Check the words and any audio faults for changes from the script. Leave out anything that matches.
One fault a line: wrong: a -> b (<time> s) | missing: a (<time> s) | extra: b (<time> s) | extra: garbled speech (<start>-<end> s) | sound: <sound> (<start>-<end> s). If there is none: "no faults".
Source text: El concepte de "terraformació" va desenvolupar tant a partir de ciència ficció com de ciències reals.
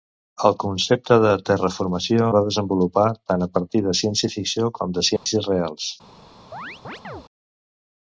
sound: dropout (5.2-5.3 s)
sound: chirp (6.5-7.3 s)